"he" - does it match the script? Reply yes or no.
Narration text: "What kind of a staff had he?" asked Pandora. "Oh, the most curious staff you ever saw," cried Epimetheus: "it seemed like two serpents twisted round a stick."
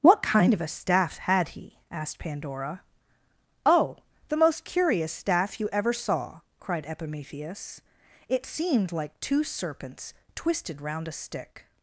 yes